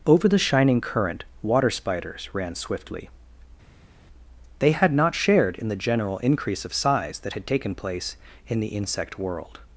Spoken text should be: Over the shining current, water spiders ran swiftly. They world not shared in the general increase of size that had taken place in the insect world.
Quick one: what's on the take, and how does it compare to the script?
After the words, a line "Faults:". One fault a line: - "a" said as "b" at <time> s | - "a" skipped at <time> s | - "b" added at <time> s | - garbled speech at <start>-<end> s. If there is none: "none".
Over the shining current, water spiders ran swiftly. They had not shared in the general increase of size that had taken place in the insect world.
Faults:
- "world" said as "had" at 4.7 s